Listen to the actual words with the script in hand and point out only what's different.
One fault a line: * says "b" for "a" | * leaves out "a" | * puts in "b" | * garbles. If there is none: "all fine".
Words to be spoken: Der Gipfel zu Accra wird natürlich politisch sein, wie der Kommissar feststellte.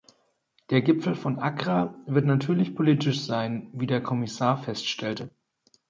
* says "von" for "zu"